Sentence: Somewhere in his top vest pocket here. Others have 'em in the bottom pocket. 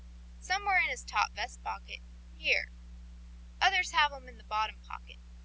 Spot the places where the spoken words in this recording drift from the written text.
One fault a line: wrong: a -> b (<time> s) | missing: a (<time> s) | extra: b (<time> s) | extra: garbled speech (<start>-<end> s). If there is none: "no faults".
no faults